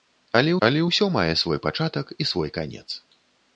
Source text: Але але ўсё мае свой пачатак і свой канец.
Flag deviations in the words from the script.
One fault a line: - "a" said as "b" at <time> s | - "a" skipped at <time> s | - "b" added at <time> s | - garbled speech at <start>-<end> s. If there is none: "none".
none